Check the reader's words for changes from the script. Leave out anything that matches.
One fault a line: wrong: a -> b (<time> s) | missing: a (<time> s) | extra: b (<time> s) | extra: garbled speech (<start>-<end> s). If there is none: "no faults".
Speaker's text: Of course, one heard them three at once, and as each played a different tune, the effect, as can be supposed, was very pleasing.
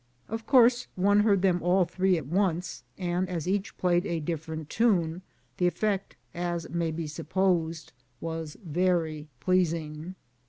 extra: all (1.6 s)
wrong: can -> may (6.7 s)